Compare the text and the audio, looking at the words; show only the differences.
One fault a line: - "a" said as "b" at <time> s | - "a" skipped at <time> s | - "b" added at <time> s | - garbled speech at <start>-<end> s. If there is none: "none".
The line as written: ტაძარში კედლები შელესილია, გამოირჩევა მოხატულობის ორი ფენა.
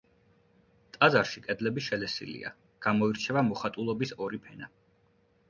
none